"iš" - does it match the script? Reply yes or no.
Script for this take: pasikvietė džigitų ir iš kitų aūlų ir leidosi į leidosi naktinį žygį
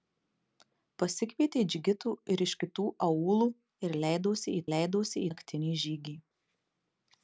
yes